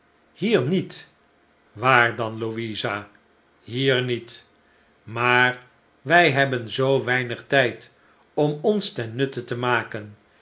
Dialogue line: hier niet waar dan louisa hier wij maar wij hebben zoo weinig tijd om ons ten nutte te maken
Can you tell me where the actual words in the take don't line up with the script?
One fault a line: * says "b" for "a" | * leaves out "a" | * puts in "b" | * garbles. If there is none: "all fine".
* says "niet" for "wij"